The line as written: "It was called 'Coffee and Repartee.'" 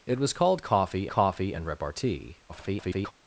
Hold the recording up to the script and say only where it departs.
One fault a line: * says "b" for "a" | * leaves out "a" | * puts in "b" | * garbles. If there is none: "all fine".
* puts in "coffee"
* garbles